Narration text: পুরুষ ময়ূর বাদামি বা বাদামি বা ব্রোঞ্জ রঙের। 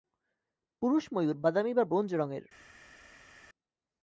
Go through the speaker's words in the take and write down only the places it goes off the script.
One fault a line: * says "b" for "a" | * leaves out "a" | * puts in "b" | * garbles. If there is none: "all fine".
* leaves out "বাদামি বা"